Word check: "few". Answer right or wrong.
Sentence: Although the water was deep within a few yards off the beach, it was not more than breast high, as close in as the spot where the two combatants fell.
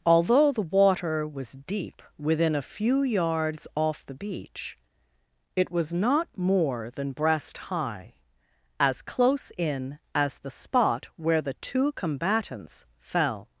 right